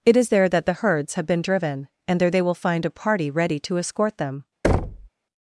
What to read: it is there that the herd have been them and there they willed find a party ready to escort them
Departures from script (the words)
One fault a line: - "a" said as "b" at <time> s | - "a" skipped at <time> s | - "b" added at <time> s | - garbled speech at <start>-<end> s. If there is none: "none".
- "herd" said as "herds" at 0.8 s
- "them" said as "driven" at 1.4 s
- "willed" said as "will" at 2.4 s